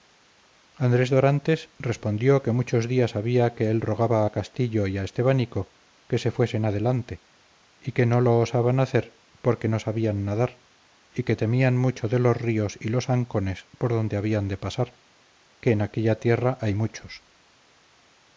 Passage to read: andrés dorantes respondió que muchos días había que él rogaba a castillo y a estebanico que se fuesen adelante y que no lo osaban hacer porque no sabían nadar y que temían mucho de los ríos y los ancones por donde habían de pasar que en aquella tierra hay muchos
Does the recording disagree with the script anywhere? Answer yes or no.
no